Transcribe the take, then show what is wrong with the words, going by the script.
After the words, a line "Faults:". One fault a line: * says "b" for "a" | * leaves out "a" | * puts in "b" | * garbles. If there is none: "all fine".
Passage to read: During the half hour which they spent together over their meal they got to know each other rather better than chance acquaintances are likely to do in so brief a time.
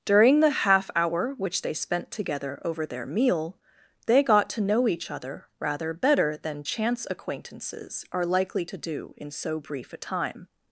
During the half hour which they spent together over their meal they got to know each other rather better than chance acquaintances are likely to do in so brief a time.
Faults:
all fine